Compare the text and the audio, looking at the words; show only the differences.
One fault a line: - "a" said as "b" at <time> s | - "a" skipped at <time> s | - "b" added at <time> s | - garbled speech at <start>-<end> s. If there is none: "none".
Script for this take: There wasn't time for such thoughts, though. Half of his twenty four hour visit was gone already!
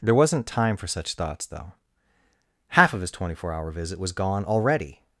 none